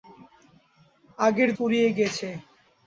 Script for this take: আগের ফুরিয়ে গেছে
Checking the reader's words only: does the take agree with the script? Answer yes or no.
yes